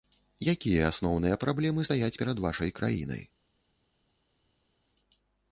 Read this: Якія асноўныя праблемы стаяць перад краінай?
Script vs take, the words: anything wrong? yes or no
yes